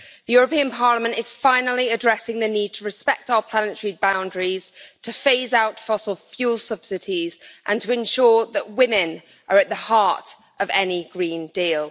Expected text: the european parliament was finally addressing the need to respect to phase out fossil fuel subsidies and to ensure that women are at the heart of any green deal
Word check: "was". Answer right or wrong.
wrong